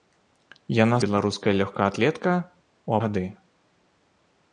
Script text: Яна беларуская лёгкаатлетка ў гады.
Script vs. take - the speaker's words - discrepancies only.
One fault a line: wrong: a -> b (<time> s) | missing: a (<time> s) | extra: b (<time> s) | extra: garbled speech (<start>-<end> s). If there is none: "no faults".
no faults